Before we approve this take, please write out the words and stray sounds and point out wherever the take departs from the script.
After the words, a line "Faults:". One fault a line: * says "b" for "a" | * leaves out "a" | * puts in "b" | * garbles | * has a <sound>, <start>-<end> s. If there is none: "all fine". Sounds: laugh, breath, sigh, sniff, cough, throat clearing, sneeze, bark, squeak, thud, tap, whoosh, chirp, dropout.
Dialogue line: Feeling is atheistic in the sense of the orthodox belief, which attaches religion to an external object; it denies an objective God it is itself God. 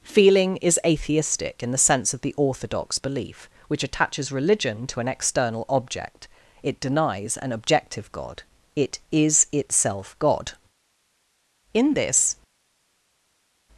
Feeling is atheistic in the sense of the orthodox belief, which attaches religion to an external object; it denies an objective God it is itself God. In this
Faults:
* puts in "In this"